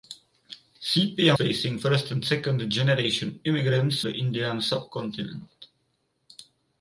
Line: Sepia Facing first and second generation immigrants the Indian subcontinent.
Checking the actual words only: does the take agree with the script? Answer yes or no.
yes